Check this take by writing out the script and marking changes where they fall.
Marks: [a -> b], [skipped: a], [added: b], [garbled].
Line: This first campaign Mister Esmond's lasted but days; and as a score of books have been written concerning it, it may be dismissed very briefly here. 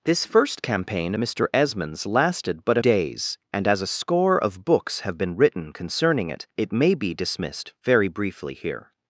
This first campaign Mister Esmond's lasted but days; and as a score of books have been written concerning it, it may be dismissed very briefly here.